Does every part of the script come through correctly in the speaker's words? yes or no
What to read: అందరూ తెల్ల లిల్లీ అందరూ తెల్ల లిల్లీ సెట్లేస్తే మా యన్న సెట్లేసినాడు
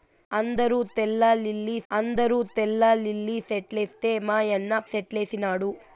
yes